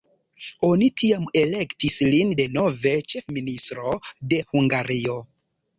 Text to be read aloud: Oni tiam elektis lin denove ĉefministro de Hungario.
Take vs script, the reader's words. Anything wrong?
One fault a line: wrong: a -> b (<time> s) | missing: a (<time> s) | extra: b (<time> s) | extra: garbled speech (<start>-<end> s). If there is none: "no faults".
no faults